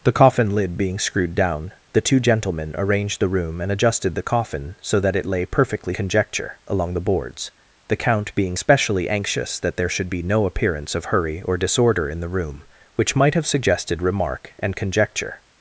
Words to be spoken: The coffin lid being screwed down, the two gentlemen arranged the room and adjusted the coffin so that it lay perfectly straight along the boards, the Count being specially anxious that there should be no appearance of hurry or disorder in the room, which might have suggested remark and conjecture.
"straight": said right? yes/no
no